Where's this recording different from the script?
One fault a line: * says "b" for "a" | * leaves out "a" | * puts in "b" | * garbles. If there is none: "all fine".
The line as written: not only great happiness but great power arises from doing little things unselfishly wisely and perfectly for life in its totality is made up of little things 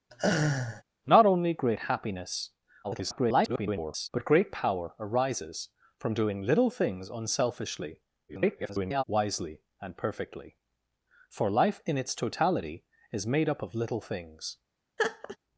* garbles
* garbles